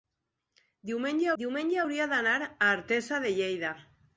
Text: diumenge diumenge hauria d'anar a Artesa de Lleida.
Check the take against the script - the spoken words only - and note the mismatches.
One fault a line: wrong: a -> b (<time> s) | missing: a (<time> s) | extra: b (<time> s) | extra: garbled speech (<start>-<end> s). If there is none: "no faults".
no faults